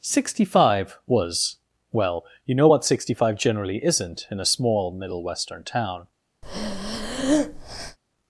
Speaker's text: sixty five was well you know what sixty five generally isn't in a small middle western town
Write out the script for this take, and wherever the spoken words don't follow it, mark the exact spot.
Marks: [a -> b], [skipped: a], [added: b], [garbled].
sixty five was well you know what sixty five generally isn't in a small middle western town